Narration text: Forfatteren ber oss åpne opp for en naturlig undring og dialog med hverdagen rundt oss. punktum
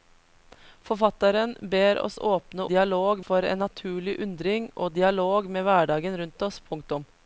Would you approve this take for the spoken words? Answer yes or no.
no